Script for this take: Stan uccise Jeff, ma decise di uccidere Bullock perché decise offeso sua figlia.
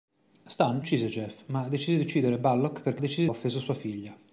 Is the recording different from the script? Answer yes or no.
no